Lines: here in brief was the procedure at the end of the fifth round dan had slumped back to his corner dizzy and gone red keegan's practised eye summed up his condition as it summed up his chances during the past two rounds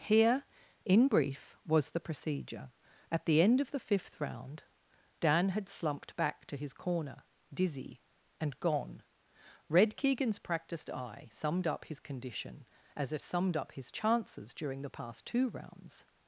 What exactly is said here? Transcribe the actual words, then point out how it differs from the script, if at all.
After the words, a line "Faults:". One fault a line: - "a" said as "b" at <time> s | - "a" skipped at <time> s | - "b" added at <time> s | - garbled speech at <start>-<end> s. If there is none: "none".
here in brief was the procedure at the end of the fifth round dan had slumped back to his corner dizzy and gone red keegan's practised eye summed up his condition as it summed up his chances during the past two rounds
Faults:
none